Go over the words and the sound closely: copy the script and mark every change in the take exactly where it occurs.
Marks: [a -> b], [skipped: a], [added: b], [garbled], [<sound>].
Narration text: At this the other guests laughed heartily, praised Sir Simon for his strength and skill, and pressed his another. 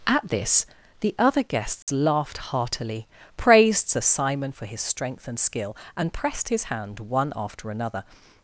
At this the other guests [dropout] laughed heartily, praised Sir Simon for his strength and skill, and pressed his [added: hand one after] another.